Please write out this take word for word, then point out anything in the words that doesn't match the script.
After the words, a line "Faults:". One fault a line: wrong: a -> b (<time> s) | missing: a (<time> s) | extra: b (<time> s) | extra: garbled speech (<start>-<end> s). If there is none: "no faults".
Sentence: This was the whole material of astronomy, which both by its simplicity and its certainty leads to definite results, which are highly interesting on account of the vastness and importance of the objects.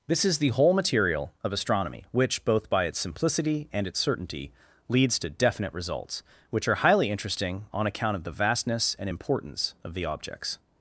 This is the whole material of astronomy, which both by its simplicity and its certainty leads to definite results, which are highly interesting on account of the vastness and importance of the objects.
Faults:
wrong: was -> is (0.2 s)